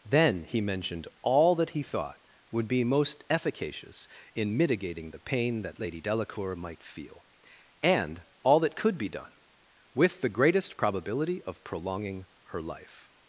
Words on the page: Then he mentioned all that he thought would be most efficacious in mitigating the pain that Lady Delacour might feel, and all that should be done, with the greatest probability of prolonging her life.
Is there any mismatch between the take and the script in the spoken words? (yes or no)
yes